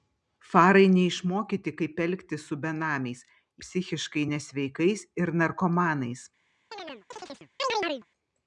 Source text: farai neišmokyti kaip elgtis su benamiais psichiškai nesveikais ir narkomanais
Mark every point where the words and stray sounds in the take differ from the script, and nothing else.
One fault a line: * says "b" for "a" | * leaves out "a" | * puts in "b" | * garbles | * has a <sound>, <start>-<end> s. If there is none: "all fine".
* has a chirp, 6.7-8.1 s